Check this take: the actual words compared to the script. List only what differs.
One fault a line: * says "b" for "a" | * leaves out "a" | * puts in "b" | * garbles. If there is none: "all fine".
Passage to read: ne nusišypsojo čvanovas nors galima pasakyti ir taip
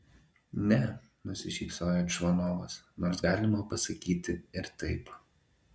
all fine